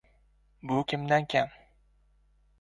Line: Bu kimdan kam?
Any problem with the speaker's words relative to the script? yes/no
no